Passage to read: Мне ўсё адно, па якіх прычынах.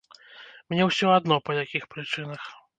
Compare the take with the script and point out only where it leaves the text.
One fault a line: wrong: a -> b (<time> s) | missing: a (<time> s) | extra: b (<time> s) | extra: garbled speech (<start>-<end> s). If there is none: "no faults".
no faults